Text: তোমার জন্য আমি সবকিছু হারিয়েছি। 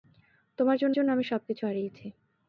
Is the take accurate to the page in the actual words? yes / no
no